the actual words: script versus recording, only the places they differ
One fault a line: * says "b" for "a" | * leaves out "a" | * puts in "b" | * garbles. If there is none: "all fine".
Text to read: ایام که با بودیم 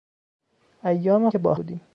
all fine